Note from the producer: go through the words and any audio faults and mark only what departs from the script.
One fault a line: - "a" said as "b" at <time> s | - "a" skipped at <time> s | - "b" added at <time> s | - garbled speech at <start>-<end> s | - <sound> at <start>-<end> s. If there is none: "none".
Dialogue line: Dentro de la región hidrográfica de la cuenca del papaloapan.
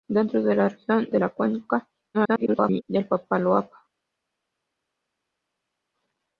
- "hidrográfica" skipped at 1.1 s
- garbled speech at 2.1-2.8 s